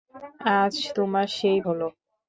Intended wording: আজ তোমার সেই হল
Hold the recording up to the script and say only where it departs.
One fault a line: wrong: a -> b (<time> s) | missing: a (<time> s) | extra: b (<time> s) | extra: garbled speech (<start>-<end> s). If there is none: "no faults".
no faults